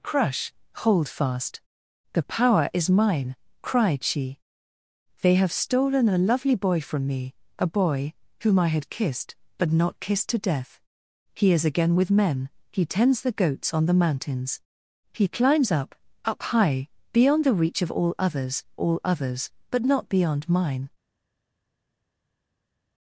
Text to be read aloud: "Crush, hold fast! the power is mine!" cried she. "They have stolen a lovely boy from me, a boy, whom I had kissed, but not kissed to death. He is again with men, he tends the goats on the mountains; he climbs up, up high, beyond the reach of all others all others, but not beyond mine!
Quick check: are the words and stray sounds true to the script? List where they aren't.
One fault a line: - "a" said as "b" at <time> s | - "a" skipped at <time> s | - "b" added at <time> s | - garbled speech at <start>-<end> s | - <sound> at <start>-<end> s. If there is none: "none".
none